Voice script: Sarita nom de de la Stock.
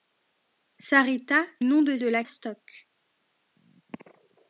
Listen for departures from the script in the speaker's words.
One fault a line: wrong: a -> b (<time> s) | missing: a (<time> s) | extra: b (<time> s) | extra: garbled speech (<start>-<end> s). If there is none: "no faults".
no faults